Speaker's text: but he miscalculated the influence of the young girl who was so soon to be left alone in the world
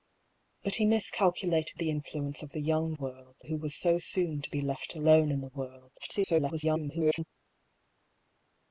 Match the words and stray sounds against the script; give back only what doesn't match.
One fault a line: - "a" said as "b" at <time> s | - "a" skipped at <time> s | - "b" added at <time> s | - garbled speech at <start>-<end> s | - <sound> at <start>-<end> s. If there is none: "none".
- "girl" said as "world" at 2.9 s
- garbled speech at 6.0-7.2 s